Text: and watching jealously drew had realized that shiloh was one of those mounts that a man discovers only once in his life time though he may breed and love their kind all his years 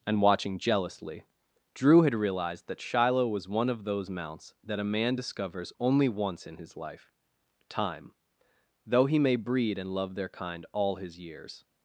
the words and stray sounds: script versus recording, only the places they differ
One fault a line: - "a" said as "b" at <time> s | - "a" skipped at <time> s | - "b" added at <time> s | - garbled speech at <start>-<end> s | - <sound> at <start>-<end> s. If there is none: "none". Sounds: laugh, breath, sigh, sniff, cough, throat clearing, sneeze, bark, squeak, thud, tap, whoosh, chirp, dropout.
none